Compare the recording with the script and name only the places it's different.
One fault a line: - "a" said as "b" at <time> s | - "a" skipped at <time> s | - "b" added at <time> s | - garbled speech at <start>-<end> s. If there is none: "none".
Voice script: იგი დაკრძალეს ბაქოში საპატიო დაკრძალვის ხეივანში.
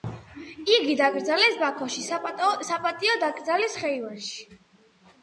none